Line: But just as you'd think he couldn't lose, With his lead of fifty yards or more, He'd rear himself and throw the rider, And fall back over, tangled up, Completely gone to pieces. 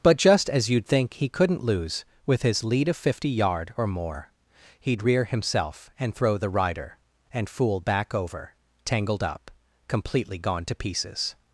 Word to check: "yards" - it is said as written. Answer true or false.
false